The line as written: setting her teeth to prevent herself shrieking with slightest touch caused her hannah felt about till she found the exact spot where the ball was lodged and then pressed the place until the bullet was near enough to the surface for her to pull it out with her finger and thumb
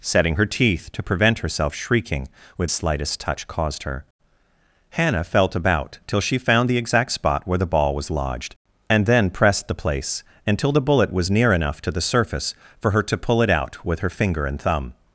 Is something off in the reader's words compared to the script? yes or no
no